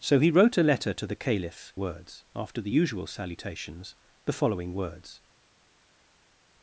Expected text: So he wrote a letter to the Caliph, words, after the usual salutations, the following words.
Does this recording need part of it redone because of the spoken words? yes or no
no